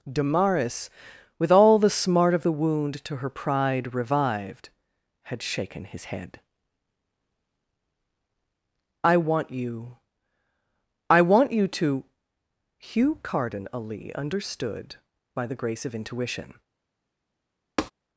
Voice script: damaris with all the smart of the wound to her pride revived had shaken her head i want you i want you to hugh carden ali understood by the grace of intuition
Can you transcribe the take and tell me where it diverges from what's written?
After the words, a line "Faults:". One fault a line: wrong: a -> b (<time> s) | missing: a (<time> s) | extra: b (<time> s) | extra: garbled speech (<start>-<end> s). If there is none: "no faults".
damaris with all the smart of the wound to her pride revived had shaken his head i want you i want you to hugh carden ali understood by the grace of intuition
Faults:
wrong: her -> his (5.9 s)